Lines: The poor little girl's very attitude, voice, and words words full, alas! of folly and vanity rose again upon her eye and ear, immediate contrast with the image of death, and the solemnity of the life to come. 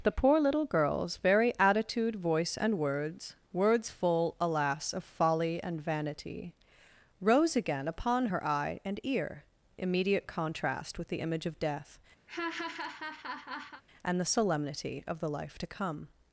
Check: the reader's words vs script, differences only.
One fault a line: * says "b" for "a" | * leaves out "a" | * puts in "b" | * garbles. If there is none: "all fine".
all fine